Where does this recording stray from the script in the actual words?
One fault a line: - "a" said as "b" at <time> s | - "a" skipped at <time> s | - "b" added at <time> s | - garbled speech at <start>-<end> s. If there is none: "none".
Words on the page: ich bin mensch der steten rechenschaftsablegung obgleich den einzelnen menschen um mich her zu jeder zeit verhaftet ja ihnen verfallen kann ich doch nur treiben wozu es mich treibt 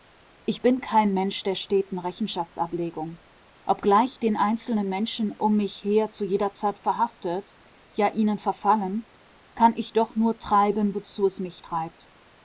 - "kein" added at 0.8 s